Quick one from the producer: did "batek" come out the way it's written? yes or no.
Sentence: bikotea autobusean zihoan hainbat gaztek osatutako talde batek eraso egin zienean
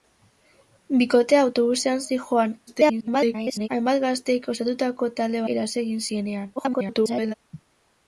no